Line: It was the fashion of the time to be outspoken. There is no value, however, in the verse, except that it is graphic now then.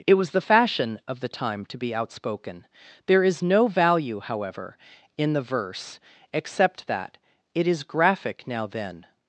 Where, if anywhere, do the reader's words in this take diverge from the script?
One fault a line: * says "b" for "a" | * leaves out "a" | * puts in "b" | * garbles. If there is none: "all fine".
all fine